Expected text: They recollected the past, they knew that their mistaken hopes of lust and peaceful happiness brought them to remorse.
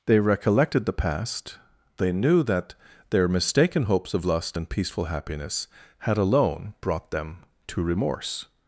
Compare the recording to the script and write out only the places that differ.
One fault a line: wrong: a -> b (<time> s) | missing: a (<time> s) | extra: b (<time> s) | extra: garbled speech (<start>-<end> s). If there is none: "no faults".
extra: had alone (6.0 s)